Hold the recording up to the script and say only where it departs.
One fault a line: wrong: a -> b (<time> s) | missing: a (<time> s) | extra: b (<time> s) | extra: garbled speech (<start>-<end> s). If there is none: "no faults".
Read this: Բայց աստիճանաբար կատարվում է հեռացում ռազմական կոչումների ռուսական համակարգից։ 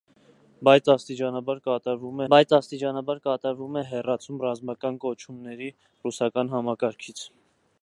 extra: բայց աստիճանաբար կատարվում (2.3 s)